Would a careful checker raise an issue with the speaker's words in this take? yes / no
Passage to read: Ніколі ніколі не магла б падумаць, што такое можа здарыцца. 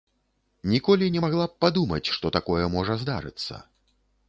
yes